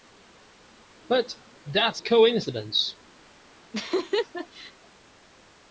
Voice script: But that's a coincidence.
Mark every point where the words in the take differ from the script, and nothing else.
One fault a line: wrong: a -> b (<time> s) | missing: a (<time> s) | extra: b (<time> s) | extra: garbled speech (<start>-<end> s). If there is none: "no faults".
no faults